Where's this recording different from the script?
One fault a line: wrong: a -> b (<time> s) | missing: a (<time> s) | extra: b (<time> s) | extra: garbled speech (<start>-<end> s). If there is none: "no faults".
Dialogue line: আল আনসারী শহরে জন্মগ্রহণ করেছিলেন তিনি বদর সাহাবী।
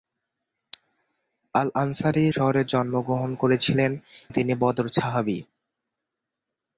no faults